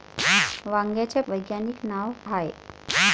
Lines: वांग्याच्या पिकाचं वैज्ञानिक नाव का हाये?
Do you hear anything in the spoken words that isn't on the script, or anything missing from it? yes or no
yes